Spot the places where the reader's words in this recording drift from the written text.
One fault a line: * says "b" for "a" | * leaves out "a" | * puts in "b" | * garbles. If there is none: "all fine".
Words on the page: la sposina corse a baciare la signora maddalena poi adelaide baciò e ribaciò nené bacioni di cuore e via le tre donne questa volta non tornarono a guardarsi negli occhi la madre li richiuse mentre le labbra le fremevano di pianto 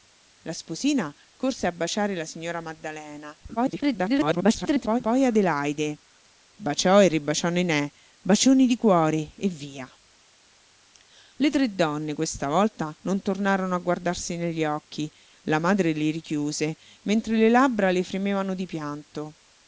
* garbles